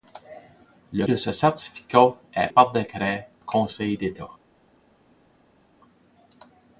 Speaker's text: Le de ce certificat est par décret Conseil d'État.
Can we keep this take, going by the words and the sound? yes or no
yes